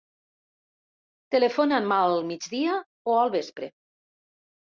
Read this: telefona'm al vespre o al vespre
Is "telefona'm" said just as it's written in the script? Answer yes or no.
yes